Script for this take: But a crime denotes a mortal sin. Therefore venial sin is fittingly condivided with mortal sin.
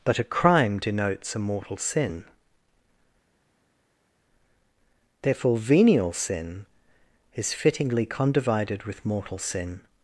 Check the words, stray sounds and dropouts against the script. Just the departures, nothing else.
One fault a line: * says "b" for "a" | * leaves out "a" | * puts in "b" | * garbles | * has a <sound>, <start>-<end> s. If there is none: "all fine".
all fine